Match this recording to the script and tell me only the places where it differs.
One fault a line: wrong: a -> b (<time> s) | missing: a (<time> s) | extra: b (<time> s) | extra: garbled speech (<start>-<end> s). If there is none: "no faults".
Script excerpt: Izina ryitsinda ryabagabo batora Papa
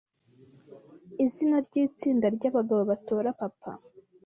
no faults